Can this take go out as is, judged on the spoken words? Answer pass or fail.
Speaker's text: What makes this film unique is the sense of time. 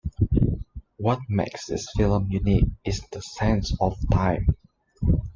pass